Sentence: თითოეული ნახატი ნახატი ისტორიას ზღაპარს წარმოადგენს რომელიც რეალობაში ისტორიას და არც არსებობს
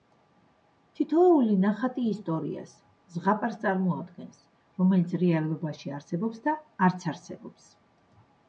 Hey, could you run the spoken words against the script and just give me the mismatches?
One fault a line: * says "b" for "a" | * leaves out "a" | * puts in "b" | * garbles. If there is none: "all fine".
* leaves out "ნახატი"
* says "არსებობს" for "ისტორიას"